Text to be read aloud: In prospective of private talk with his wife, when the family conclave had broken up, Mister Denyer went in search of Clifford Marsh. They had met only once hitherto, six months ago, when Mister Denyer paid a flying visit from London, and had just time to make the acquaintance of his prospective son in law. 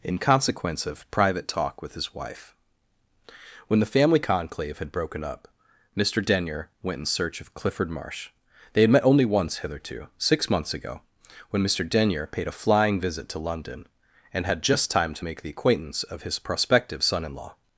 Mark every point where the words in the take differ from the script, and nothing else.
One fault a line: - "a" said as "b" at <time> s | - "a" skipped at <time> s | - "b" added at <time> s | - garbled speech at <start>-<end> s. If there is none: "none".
- "prospective" said as "consequence" at 0.2 s
- "from" said as "to" at 13.3 s